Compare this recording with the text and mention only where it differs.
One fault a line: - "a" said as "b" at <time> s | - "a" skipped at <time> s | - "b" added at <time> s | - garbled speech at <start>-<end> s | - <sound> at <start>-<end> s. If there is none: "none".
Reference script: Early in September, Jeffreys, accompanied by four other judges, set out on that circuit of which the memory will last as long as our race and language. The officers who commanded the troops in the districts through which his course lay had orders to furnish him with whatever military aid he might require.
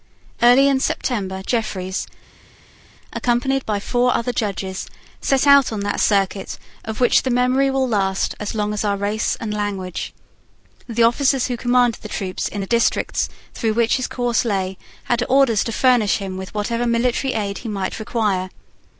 none